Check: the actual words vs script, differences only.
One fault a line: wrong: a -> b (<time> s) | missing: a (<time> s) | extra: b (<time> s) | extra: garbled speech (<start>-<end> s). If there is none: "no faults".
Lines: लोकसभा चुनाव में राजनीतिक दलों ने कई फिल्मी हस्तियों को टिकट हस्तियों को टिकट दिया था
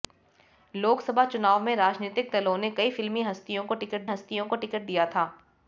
no faults